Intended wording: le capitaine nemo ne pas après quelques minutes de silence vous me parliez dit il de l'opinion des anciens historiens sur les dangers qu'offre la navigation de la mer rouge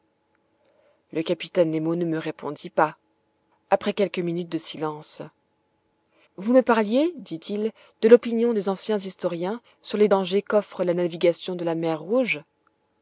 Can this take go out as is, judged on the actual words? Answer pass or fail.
fail